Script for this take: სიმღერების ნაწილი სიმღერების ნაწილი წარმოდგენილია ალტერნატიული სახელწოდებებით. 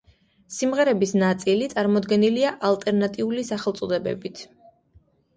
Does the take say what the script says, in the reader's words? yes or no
no